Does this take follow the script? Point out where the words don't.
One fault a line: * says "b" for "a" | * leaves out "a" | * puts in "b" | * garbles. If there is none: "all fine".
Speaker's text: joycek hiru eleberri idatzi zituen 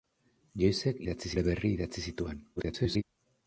* says "idatzi" for "hiru"
* garbles